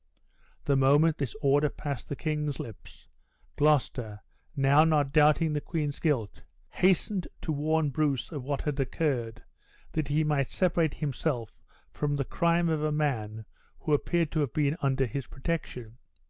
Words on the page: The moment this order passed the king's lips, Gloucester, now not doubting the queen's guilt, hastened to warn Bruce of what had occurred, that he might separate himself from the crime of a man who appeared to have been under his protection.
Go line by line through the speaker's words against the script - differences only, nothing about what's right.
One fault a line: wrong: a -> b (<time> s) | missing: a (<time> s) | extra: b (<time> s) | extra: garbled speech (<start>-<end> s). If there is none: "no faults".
no faults